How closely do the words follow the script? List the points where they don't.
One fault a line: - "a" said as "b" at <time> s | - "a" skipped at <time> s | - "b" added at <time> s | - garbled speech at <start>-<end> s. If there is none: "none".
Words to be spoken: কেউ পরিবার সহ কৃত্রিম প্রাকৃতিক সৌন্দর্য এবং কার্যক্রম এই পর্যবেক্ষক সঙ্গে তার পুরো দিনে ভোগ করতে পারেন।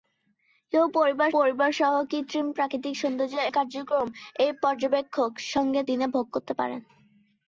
- "পরিবার" added at 1.4 s
- "এবং" skipped at 3.4 s
- "তার পুরো" skipped at 5.8 s